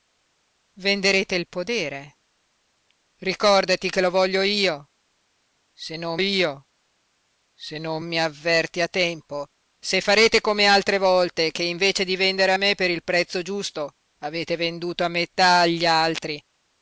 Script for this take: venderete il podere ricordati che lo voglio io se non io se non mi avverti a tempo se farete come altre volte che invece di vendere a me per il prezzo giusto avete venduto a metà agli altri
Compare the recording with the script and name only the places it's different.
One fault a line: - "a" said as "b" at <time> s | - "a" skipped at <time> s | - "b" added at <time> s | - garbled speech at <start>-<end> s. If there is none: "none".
none